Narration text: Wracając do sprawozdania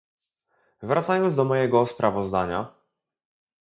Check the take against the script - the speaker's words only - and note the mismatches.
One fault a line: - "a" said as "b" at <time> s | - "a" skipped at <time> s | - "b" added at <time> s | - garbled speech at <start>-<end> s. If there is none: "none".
- "mojego" added at 1.4 s